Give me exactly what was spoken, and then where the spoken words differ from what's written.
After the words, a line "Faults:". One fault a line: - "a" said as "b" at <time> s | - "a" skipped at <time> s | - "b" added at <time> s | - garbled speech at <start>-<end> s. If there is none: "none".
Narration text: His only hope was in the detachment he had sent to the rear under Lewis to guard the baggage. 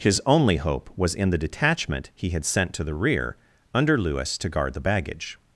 His only hope was in the detachment he had sent to the rear under Lewis to guard the baggage.
Faults:
none